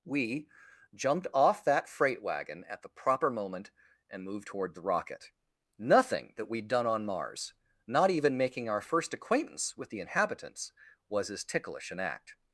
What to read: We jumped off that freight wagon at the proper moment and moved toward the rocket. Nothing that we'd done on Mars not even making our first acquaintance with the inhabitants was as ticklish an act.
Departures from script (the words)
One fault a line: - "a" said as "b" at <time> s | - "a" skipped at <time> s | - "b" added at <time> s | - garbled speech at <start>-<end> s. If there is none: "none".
none